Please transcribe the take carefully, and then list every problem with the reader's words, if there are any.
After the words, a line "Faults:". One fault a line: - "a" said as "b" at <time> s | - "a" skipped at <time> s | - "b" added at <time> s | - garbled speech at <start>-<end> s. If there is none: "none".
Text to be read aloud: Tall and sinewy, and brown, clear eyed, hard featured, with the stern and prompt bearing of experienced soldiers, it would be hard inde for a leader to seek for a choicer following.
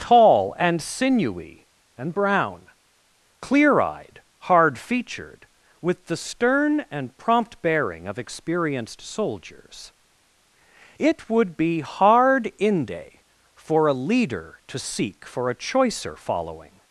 Tall and sinewy, and brown, clear eyed, hard featured, with the stern and prompt bearing of experienced soldiers, it would be hard inde for a leader to seek for a choicer following.
Faults:
none